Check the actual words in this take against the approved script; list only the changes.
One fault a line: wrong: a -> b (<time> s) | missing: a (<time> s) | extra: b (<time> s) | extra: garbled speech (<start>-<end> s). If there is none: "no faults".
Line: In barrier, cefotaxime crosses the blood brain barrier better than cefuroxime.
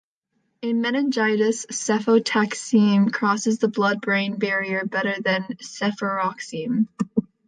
wrong: barrier -> meningitis (0.8 s)